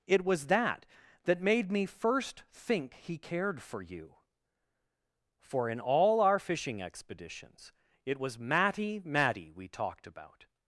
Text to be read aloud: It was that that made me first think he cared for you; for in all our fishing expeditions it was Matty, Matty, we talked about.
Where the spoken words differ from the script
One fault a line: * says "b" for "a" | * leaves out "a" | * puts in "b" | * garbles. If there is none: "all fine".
all fine